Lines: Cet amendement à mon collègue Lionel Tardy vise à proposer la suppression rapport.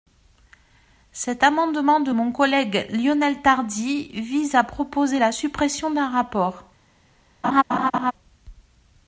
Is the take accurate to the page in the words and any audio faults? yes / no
no